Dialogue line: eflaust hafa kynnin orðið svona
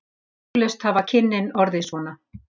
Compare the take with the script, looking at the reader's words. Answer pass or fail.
pass